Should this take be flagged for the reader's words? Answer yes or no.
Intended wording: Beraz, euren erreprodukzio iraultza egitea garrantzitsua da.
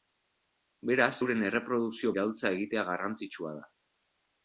no